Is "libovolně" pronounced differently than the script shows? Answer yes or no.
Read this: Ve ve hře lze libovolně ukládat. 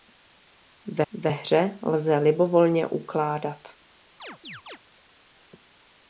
no